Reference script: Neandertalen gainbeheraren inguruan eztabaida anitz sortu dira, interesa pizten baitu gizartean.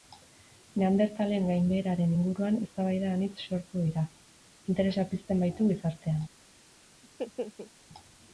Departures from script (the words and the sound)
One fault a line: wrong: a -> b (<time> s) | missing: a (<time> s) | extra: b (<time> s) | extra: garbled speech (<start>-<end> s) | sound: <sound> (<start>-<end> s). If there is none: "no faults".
sound: laugh (7.0-7.7 s)